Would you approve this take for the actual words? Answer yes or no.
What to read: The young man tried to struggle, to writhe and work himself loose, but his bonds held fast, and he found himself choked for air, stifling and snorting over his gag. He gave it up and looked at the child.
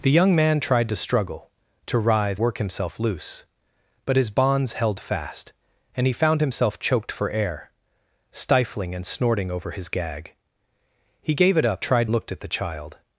no